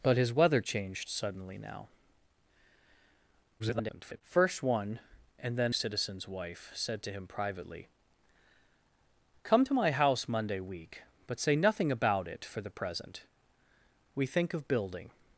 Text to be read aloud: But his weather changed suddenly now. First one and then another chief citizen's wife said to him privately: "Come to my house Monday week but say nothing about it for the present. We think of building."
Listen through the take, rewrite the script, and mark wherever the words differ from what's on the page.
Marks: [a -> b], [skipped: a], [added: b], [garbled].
But his weather changed suddenly now. [garbled] First one and then [skipped: another chief] citizen's wife said to him privately: "Come to my house Monday week but say nothing about it for the present. We think of building."